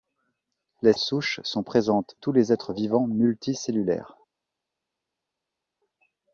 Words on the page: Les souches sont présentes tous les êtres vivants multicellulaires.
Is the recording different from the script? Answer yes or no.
no